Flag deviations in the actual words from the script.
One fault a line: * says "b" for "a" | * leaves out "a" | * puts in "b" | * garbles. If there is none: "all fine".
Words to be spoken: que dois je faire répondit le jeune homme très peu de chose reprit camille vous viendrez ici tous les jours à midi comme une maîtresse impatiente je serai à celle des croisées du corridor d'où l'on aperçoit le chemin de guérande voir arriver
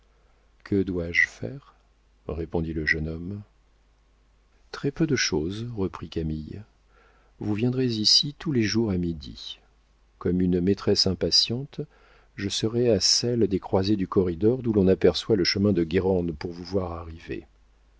* puts in "pour vous"